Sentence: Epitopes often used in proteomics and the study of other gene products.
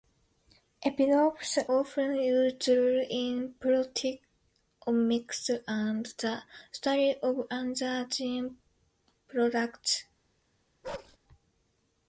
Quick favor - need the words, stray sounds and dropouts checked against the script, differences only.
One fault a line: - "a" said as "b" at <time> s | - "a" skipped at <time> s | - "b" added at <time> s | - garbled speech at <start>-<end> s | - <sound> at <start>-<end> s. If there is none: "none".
- bark at 10.8-11.2 s